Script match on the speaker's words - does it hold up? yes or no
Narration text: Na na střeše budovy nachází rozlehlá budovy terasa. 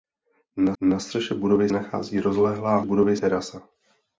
yes